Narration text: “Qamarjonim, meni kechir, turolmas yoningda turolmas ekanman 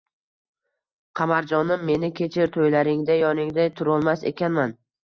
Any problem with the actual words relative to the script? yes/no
yes